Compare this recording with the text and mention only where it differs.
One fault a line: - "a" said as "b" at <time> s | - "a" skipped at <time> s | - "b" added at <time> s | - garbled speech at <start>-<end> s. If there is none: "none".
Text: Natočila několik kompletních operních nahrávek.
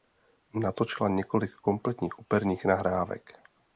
none